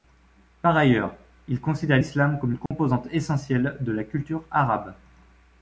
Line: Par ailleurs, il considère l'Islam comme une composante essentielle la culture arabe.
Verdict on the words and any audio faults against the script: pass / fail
fail